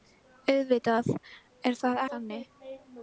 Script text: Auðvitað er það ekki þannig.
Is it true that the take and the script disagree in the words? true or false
true